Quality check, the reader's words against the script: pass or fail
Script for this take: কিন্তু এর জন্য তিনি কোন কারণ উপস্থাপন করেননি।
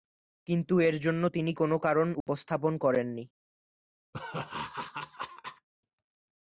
pass